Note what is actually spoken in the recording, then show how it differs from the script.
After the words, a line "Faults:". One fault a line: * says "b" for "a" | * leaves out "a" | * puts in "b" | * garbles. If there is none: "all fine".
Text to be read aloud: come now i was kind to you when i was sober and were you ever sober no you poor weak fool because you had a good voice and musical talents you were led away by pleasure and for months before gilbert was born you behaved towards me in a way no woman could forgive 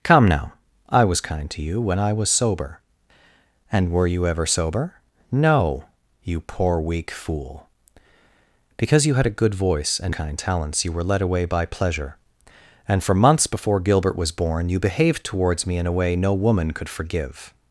come now i was kind to you when i was sober and were you ever sober no you poor weak fool because you had a good voice and kind talents you were led away by pleasure and for months before gilbert was born you behaved towards me in a way no woman could forgive
Faults:
* says "kind" for "musical"